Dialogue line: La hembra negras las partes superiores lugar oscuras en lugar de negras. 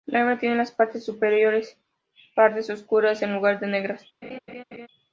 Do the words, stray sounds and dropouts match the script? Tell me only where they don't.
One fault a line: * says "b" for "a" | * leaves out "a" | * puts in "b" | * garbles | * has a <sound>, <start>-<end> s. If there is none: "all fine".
* says "tiene" for "negras"
* says "pardas" for "lugar"
* has a laugh, 4.2-4.9 s